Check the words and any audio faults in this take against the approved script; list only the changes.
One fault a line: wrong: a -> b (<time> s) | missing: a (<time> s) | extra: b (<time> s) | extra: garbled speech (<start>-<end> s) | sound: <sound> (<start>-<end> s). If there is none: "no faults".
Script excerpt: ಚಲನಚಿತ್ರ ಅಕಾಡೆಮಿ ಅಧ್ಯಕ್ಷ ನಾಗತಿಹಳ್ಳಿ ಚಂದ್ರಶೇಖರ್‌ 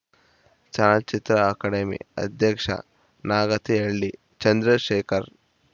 no faults